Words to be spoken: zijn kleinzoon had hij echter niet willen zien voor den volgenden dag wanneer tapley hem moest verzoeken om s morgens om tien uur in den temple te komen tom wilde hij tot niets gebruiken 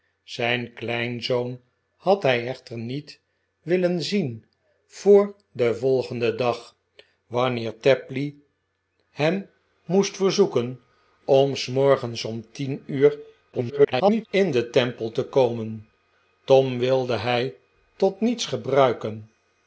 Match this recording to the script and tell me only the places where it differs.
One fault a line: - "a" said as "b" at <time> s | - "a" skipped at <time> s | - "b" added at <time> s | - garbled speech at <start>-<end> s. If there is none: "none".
- garbled speech at 13.5-14.3 s